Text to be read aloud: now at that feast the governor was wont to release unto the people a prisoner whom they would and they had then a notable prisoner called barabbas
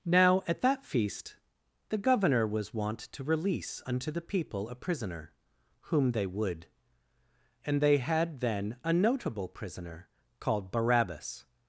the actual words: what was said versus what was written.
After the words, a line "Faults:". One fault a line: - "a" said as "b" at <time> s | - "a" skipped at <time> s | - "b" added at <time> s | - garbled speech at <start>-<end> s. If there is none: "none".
now at that feast the governor was wont to release unto the people a prisoner whom they would and they had then a notable prisoner called barabbas
Faults:
none